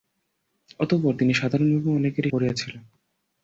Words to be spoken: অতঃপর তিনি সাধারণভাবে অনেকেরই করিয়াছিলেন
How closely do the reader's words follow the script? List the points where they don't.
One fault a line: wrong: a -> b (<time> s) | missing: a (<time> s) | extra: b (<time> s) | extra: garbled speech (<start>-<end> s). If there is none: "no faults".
no faults